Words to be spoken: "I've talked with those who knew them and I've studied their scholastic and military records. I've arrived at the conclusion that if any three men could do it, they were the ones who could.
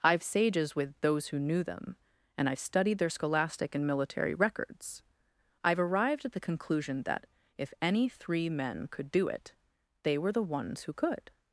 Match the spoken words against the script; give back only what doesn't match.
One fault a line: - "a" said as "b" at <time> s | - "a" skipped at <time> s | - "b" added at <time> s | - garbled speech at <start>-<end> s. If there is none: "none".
- "talked" said as "sages" at 0.2 s